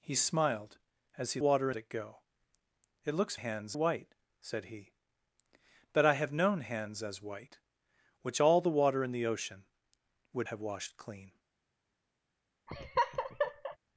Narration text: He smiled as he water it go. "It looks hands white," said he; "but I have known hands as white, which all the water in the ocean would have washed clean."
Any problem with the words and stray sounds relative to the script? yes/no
yes